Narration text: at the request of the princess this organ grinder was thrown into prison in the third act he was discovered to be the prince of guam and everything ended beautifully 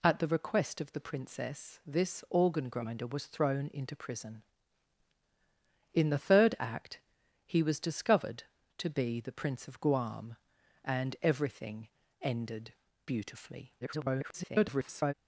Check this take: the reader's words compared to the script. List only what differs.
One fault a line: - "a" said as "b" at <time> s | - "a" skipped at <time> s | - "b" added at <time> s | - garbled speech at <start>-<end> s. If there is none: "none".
- garbled speech at 13.8-15.1 s